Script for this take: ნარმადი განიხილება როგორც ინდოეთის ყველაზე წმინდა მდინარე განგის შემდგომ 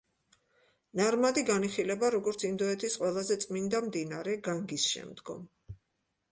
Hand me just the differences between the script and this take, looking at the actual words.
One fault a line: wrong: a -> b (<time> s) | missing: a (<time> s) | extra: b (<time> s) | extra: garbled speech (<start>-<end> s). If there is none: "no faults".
no faults